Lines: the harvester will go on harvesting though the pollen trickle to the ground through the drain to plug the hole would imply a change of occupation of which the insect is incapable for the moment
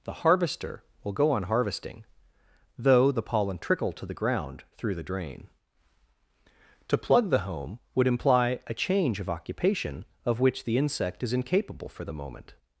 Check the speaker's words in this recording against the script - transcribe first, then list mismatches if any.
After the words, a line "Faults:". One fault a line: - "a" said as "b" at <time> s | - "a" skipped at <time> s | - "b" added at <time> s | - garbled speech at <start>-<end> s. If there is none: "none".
the harvester will go on harvesting though the pollen trickle to the ground through the drain to plug the home would imply a change of occupation of which the insect is incapable for the moment
Faults:
- "hole" said as "home" at 7.4 s